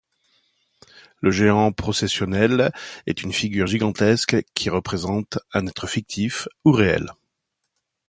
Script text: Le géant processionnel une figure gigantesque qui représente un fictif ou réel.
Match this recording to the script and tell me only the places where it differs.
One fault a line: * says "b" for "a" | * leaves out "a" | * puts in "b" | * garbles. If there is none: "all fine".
* puts in "est"
* puts in "être"